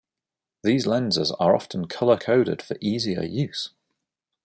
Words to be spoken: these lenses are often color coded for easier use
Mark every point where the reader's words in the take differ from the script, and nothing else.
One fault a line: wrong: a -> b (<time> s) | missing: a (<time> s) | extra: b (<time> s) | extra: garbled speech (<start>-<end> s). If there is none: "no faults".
no faults